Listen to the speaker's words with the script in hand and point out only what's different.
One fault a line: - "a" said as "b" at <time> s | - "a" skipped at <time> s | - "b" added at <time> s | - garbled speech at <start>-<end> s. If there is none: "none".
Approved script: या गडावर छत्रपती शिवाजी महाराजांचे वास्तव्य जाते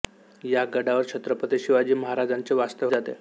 none